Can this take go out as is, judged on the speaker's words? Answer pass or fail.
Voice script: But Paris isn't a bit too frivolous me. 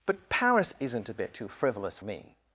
pass